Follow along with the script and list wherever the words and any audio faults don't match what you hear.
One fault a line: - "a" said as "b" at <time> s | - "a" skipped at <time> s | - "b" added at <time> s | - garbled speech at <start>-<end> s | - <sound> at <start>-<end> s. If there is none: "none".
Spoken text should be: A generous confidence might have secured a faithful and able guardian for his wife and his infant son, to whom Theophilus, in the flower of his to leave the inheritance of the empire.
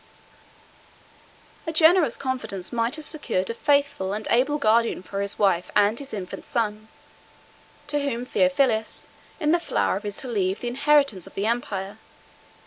none